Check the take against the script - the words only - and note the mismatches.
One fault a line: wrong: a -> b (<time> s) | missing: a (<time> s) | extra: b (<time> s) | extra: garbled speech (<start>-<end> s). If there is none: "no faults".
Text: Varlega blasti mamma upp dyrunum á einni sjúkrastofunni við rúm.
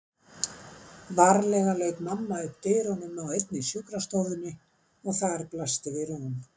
wrong: blasti -> lauk (1.8 s)
extra: og þar blasti (5.1 s)